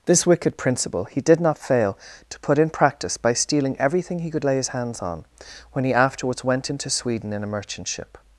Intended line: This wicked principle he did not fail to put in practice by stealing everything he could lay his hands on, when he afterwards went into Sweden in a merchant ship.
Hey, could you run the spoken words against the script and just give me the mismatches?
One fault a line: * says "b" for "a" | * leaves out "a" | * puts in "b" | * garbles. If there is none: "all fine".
all fine